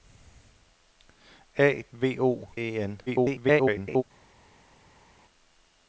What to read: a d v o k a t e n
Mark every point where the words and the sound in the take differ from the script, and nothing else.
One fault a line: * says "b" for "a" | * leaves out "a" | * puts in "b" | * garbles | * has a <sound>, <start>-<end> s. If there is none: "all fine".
* leaves out "d"
* leaves out "k a t"
* garbles